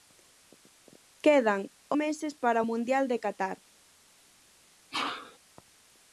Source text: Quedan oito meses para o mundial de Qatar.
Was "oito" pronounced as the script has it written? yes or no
no